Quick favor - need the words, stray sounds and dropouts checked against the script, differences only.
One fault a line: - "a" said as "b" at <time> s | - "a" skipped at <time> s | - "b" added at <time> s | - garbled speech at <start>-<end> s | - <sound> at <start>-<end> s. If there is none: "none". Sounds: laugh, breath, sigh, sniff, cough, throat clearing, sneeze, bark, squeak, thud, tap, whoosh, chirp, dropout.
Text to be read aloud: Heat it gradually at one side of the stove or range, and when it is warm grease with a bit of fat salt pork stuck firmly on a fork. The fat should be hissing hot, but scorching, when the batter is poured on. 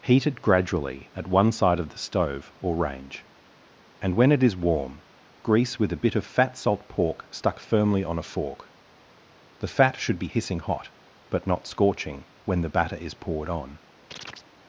- "not" added at 11.4 s
- chirp at 14.1-14.5 s